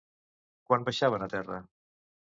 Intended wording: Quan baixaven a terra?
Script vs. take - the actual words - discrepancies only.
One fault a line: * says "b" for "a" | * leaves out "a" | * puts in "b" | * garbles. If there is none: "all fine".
all fine